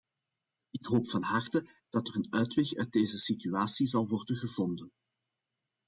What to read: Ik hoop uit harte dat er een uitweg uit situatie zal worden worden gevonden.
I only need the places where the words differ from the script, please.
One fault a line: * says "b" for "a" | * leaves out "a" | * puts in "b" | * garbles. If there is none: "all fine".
* says "van" for "uit"
* puts in "deze"
* leaves out "worden"